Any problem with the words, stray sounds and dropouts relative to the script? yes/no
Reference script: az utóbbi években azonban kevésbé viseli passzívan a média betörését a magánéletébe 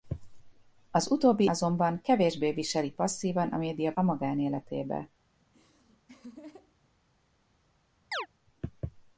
yes